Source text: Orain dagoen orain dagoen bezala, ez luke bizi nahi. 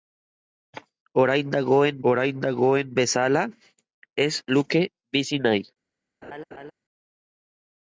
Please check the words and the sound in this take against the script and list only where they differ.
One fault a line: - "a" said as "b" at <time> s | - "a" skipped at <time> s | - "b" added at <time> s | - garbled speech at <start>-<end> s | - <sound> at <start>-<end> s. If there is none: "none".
- laugh at 6.2-6.7 s